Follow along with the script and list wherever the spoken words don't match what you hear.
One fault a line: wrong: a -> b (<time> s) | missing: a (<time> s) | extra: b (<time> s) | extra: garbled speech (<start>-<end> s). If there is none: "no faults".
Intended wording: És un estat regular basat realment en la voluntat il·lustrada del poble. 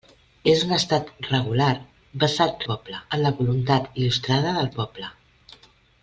wrong: realment -> poble (2.7 s)